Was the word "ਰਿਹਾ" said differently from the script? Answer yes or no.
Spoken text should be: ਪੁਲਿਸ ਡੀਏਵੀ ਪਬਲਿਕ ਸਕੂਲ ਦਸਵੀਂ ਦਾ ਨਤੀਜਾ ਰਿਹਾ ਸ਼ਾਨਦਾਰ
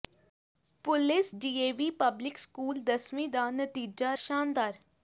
yes